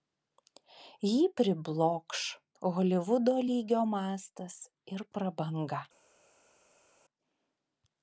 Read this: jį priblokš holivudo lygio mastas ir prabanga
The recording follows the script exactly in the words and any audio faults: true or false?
true